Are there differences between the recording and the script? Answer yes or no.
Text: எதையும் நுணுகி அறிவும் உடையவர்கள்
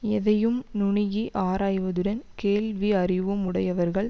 yes